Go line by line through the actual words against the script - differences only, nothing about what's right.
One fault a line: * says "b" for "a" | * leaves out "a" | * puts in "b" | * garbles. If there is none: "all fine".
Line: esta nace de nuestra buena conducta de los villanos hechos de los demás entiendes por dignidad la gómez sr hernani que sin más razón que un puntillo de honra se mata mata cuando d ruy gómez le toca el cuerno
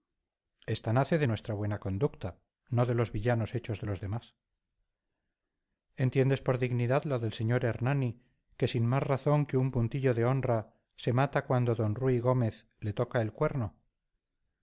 * puts in "no"
* says "del" for "gómez"
* leaves out "mata"